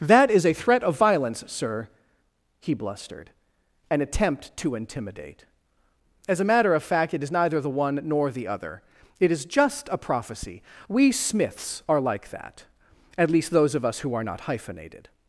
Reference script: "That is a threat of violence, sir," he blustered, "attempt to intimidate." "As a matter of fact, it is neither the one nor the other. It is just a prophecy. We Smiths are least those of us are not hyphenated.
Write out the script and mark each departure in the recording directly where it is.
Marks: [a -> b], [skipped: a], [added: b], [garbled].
"That is a threat of violence, sir," he blustered, [added: an] "attempt to intimidate." "As a matter of fact, it is neither the one nor the other. It is just a prophecy. We Smiths are [added: like that at] least those of us [added: who] are not hyphenated.